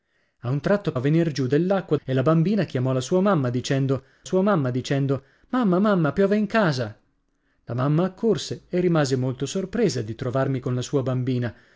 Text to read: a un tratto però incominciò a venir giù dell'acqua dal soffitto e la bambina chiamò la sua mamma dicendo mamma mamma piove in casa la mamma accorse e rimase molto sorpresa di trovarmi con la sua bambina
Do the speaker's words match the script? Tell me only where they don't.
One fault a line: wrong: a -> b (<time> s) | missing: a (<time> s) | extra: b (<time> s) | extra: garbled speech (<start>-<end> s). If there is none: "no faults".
missing: però incominciò (0.9 s)
missing: dal soffitto (1.9 s)
extra: sua mamma dicendo (4.2 s)